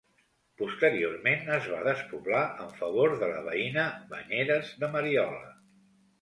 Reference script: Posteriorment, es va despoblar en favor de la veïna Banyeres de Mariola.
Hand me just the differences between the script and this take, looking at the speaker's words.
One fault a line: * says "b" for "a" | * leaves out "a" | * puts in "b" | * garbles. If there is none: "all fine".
all fine